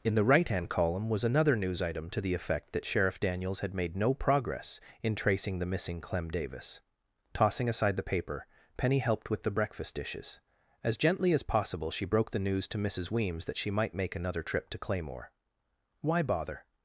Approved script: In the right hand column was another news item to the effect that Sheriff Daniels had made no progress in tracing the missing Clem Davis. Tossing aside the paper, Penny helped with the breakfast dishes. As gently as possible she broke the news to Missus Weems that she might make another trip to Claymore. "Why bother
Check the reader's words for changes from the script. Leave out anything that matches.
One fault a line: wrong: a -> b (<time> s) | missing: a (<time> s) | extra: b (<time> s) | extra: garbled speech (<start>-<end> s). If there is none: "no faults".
no faults